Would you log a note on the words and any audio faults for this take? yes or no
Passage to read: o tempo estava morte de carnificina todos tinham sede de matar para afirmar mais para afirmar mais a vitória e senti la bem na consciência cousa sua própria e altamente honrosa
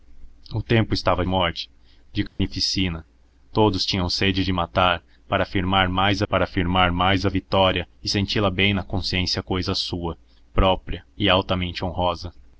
yes